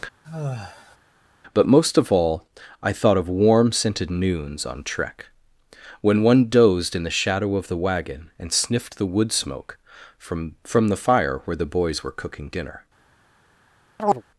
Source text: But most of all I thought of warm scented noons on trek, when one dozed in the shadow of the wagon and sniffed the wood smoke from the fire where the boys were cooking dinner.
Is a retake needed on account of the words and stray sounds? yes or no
yes